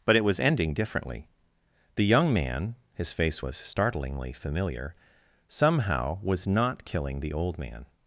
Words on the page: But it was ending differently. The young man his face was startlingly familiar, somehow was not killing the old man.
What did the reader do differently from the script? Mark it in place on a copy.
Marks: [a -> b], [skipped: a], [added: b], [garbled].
But it was ending differently. The young man his face was startlingly familiar, somehow was not killing the old man.